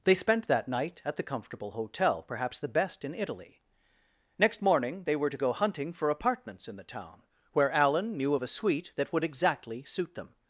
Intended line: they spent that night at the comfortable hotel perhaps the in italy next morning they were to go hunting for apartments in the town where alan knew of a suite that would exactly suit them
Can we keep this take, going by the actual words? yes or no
no